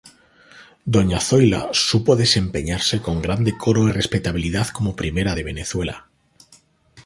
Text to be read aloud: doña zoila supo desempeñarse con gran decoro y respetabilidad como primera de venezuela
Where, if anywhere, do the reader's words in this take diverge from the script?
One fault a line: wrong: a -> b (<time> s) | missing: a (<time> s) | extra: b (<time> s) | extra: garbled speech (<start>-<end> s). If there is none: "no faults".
no faults